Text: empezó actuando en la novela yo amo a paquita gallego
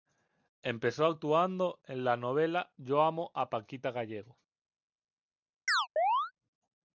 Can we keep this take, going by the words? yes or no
yes